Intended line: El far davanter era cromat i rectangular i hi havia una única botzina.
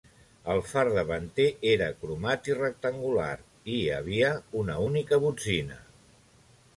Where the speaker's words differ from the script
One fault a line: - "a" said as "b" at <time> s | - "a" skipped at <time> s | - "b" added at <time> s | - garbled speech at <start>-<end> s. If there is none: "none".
none